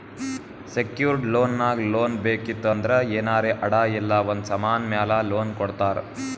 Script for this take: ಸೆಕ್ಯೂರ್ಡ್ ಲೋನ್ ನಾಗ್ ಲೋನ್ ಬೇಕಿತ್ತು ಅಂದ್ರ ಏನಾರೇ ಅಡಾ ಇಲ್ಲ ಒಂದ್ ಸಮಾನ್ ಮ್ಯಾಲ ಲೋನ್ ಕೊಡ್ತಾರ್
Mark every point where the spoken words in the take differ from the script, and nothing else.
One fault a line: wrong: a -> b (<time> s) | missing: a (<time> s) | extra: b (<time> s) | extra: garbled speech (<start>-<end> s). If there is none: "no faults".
no faults